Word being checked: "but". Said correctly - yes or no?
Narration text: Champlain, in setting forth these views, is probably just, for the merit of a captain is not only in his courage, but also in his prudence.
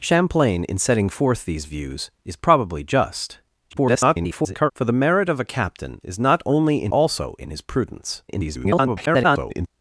no